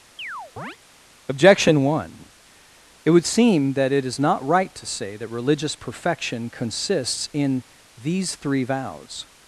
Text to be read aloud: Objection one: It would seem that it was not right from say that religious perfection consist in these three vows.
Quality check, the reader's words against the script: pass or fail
fail